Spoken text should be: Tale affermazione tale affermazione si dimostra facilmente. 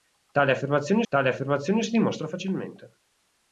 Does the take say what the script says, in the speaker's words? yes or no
yes